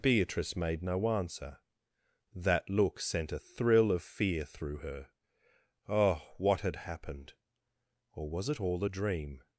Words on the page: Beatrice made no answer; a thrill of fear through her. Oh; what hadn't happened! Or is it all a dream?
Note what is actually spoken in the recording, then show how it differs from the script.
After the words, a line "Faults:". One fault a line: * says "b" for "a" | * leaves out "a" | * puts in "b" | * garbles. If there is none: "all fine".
Beatrice made no answer; that look sent a thrill of fear through her. Oh; what had happened! Or was it all a dream?
Faults:
* puts in "that look sent"
* says "had" for "hadn't"
* says "was" for "is"